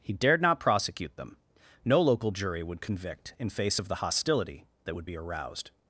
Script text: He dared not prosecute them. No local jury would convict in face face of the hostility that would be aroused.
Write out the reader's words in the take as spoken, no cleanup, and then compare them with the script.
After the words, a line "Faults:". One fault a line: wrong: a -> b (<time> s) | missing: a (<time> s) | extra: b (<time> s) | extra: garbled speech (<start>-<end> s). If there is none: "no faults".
He dared not prosecute them. No local jury would convict in face of the hostility that would be aroused.
Faults:
missing: face (3.8 s)